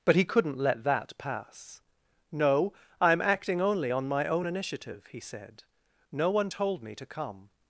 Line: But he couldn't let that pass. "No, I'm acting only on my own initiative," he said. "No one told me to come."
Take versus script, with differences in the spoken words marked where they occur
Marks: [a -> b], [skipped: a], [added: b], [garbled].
But he couldn't let that pass. "No, I'm acting only on my own initiative," he said. "No one told me to come."